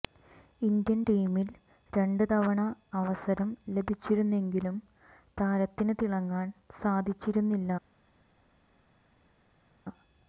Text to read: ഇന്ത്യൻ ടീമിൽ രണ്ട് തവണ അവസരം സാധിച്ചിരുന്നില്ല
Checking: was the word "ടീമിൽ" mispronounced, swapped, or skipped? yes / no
no